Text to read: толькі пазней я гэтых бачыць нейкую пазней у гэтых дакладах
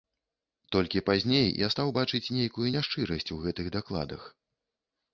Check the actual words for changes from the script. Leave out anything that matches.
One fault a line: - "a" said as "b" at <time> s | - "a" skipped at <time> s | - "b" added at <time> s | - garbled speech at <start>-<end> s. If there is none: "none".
- "гэтых" said as "стаў" at 1.7 s
- "пазней" said as "няшчырасць" at 2.8 s